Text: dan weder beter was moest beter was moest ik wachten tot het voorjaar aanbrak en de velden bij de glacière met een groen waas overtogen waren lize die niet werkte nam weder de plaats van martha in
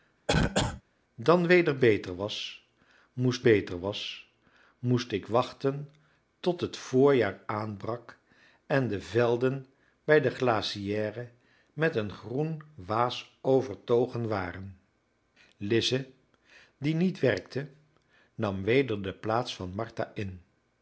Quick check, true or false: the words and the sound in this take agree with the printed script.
false